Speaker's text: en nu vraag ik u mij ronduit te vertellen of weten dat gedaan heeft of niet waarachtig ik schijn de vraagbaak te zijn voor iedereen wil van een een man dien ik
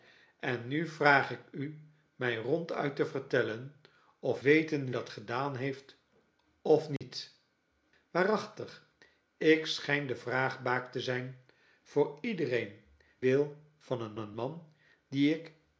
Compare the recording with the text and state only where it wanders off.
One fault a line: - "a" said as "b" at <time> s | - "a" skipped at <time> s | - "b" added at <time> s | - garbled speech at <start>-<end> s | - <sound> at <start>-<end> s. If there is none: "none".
- dropout at 7.0-7.0 s